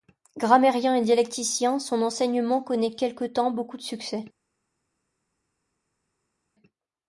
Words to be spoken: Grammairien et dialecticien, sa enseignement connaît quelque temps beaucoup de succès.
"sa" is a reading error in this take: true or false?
true